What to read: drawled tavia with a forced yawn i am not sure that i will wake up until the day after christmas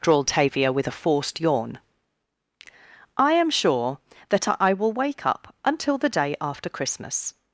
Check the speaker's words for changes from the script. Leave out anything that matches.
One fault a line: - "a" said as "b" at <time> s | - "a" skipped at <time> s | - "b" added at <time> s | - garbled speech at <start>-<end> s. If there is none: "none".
- "not" skipped at 3.5 s